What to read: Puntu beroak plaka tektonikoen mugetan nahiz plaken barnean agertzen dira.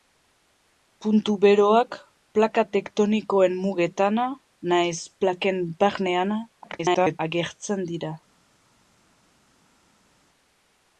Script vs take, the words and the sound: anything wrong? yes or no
yes